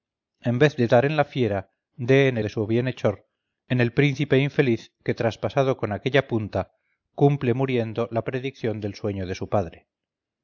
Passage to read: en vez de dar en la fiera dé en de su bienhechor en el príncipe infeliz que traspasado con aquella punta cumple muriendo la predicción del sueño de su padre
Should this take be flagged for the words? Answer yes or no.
no